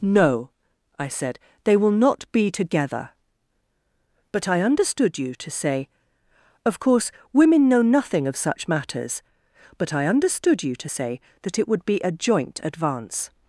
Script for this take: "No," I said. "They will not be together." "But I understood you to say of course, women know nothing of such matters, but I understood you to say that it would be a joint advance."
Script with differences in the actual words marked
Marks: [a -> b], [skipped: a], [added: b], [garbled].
"No," I said. "They will not be together." "But I understood you to say of course, women know nothing of such matters, but I understood you to say that it would be a joint advance."